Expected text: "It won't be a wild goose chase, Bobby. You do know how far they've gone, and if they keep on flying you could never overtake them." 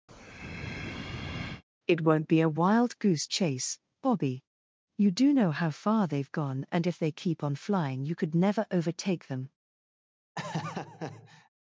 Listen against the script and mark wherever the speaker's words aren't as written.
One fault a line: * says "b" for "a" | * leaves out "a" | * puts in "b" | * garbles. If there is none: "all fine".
all fine